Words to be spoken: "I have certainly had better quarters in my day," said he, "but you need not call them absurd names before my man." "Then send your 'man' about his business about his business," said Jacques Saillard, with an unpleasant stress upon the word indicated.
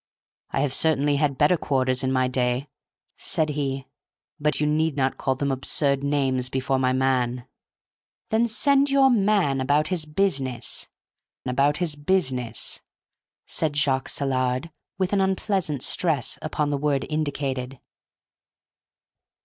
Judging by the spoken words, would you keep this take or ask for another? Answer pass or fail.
pass